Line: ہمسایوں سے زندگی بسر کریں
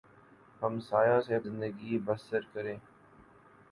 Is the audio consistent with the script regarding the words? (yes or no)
yes